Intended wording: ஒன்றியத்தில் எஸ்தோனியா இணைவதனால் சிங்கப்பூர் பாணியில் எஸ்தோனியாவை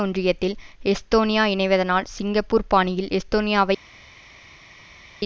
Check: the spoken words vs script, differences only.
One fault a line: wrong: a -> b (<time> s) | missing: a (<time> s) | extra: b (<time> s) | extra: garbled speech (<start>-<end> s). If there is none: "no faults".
no faults